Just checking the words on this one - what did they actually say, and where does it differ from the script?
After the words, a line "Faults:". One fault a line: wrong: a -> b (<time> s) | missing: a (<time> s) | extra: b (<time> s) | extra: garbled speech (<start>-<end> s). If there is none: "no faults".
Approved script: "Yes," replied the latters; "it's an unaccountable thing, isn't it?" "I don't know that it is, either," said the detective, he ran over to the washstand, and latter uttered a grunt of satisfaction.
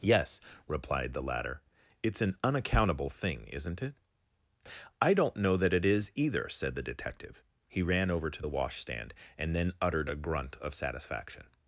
"Yes," replied the latter; "it's an unaccountable thing, isn't it?" "I don't know that it is, either," said the detective, he ran over to the washstand, and then uttered a grunt of satisfaction.
Faults:
wrong: latters -> latter (1.2 s)
wrong: latter -> then (9.5 s)